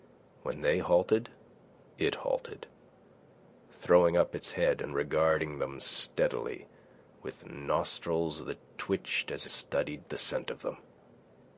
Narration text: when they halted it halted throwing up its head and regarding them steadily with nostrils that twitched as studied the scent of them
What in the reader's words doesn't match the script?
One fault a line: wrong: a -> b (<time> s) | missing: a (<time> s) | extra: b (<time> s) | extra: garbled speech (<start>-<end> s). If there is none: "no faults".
no faults